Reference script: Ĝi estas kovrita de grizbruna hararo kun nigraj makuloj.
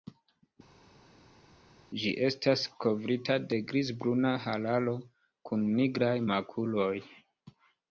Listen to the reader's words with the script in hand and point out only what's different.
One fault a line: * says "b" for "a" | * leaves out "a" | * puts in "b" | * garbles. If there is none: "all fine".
all fine